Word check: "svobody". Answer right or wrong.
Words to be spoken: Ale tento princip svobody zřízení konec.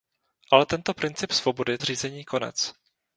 right